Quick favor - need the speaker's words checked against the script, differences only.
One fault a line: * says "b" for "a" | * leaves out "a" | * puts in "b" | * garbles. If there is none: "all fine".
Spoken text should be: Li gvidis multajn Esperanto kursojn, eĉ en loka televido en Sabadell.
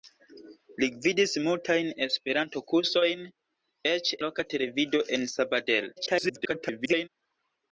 * leaves out "en"
* garbles